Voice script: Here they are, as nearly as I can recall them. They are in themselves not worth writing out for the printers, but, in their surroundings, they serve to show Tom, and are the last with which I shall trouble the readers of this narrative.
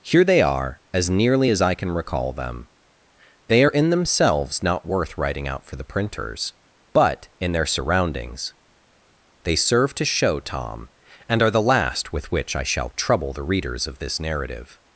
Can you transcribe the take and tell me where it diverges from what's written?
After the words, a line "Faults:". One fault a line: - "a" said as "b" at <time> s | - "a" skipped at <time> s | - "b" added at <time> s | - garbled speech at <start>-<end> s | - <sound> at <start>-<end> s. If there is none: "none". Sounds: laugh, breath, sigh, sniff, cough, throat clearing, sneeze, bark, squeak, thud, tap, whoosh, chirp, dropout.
Here they are, as nearly as I can recall them. They are in themselves not worth writing out for the printers, but, in their surroundings, they serve to show Tom, and are the last with which I shall trouble the readers of this narrative.
Faults:
none